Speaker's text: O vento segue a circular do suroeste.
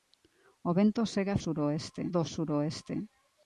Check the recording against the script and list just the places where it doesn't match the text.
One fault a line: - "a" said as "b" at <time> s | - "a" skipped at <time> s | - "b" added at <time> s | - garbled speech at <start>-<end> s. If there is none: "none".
- "circular" said as "suroeste" at 1.4 s